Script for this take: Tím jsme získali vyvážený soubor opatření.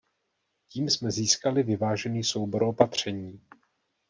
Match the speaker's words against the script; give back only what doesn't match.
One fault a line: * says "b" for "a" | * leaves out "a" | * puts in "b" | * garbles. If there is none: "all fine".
all fine